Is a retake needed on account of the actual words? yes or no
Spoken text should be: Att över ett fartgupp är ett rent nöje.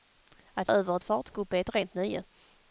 no